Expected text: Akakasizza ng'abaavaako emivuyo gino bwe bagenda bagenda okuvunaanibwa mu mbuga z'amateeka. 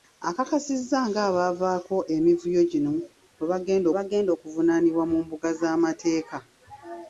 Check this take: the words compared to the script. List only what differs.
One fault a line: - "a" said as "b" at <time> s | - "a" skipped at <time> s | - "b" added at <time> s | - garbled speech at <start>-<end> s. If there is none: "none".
none